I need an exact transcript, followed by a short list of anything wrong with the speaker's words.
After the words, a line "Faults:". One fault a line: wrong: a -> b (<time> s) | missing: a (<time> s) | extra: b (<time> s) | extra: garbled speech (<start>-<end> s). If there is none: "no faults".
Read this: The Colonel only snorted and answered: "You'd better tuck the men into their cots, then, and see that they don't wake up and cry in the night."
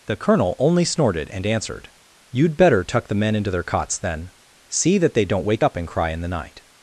The Colonel only snorted and answered: "You'd better tuck the men into their cots, then, see that they don't wake up and cry in the night."
Faults:
missing: and (4.3 s)